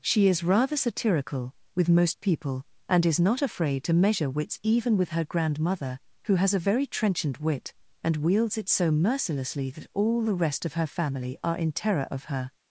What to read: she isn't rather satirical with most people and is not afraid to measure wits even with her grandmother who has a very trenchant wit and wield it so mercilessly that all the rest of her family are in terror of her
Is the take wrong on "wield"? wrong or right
wrong